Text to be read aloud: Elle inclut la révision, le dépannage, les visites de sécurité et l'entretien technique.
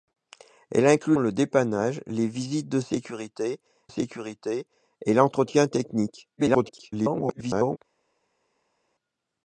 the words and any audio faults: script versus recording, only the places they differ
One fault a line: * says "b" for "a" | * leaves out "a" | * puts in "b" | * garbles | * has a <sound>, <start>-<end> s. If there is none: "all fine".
* leaves out "la révision"
* puts in "sécurité"
* garbles